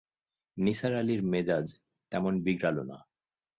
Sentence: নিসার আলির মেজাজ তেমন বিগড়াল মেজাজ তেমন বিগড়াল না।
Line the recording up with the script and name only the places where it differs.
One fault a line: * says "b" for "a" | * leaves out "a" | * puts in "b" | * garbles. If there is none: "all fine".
* leaves out "মেজাজ তেমন বিগড়াল"